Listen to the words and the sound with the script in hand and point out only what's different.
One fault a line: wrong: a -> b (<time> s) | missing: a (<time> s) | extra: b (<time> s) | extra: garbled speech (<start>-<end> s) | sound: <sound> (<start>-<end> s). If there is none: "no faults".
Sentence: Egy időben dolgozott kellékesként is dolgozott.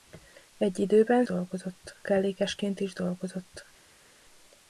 no faults